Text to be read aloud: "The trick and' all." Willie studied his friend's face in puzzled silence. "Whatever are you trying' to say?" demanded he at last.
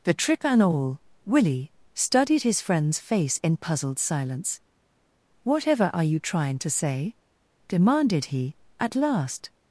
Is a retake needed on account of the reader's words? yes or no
no